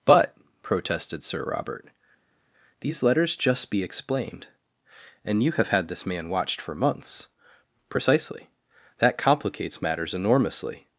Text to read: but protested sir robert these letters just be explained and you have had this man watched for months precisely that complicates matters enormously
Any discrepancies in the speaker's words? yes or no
no